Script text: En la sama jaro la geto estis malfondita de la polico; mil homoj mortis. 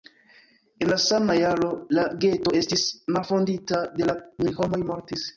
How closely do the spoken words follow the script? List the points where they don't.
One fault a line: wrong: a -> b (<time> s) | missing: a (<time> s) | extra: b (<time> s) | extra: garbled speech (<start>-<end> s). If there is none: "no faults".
missing: polico (4.2 s)